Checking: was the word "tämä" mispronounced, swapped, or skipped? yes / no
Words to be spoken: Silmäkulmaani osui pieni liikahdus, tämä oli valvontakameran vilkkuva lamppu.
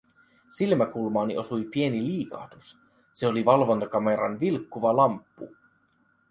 yes